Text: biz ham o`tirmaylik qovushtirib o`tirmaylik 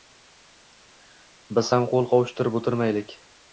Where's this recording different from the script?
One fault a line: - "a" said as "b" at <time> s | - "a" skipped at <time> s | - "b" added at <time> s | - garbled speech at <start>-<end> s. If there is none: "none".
- "o`tirmaylik" said as "qo`l" at 2.0 s